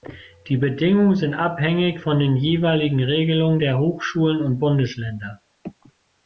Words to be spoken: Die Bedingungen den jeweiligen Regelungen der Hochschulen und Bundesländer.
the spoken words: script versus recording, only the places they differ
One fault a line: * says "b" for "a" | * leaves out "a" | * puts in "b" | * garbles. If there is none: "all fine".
* puts in "sind abhängig von"